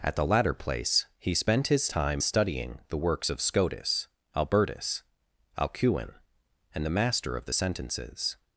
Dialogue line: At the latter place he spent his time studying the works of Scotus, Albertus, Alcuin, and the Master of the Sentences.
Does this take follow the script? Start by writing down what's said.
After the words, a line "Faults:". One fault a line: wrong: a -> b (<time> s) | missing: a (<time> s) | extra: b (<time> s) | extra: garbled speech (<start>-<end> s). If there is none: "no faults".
At the latter place he spent his time studying the works of Scotus, Albertus, Alcuin, and the Master of the Sentences.
Faults:
no faults